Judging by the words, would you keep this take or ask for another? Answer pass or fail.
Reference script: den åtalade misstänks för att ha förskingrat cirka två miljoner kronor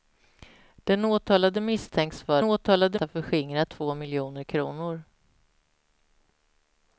fail